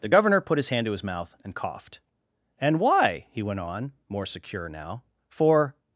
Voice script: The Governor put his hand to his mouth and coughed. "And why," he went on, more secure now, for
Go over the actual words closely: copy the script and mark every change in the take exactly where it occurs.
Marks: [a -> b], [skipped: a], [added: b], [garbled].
The Governor put his hand to his mouth and coughed. "And why," he went on, more secure now, for